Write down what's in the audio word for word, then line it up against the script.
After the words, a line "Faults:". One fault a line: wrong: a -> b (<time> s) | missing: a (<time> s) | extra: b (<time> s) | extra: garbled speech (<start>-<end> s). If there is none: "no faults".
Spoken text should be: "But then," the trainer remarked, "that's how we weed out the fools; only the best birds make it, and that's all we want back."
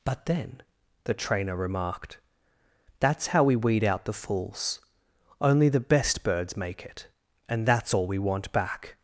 "But then," the trainer remarked, "that's how we weed out the fools; only the best birds make it, and that's all we want back."
Faults:
no faults